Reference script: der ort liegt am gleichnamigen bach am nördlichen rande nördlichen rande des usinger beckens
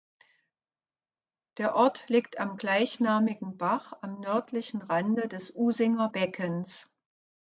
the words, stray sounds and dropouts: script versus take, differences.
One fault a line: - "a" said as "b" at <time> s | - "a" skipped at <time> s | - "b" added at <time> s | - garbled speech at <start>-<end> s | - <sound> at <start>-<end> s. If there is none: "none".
- "nördlichen rande" skipped at 5.3 s